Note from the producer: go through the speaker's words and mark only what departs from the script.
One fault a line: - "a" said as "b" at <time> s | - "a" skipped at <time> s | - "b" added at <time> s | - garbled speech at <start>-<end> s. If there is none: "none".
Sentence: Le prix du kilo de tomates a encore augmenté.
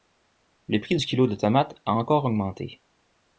none